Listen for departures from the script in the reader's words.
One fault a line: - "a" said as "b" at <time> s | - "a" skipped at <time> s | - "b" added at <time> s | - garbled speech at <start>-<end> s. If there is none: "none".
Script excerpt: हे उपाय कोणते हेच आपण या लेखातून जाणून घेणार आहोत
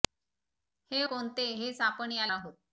- "उपाय" skipped at 1.0 s
- "लेखातून जाणून घेणार" skipped at 2.3 s